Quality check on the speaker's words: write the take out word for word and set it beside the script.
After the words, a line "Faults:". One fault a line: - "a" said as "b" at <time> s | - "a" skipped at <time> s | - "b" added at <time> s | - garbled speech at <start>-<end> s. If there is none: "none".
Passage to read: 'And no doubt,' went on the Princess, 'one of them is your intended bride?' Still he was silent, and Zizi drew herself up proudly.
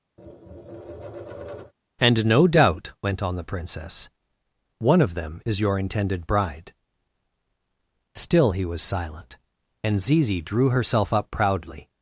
'And no doubt,' went on the Princess, 'one of them is your intended bride?' Still he was silent, and Zizi drew herself up proudly.
Faults:
none